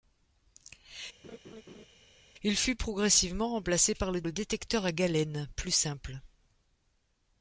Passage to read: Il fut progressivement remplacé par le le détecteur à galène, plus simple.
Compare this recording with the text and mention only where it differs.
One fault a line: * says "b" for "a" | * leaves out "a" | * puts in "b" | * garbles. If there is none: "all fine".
all fine